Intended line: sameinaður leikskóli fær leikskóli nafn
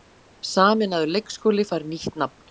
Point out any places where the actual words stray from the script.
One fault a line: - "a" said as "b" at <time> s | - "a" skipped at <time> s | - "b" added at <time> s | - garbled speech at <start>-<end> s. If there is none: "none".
- "leikskóli" said as "nýtt" at 1.9 s